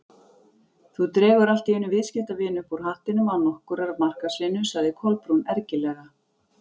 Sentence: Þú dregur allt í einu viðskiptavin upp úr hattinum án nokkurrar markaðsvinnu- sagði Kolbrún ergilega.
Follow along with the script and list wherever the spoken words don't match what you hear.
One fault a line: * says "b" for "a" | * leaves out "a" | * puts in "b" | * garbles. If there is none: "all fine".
all fine